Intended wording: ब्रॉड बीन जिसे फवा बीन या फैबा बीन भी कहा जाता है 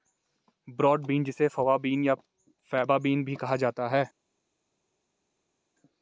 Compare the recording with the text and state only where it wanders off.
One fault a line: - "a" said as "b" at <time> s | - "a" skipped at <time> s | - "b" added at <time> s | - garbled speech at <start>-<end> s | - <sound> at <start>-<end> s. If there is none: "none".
none